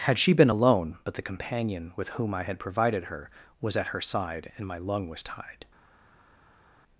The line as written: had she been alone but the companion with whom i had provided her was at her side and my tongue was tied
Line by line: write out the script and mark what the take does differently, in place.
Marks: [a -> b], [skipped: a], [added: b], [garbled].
had she been alone but the companion with whom i had provided her was at her side and my [tongue -> lung] was tied